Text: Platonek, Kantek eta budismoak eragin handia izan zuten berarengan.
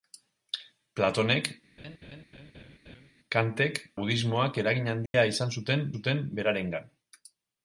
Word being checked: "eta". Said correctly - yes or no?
no